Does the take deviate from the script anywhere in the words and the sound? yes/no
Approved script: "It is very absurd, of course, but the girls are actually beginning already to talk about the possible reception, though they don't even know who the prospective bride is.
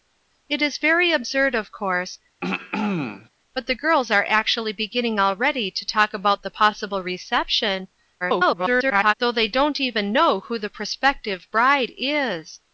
yes